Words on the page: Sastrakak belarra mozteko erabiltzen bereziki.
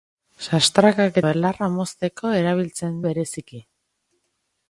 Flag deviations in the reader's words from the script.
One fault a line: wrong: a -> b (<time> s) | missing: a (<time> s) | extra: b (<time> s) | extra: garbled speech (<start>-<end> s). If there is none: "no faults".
no faults